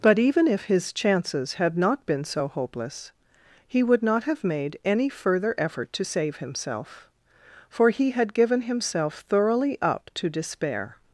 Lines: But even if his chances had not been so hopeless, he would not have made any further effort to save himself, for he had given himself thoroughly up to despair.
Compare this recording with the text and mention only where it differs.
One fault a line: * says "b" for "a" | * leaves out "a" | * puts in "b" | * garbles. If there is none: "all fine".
all fine